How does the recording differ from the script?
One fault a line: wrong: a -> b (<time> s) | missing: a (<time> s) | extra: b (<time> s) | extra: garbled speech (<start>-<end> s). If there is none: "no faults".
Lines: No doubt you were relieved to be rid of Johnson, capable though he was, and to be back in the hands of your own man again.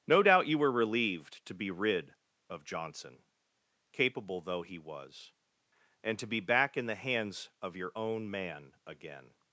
no faults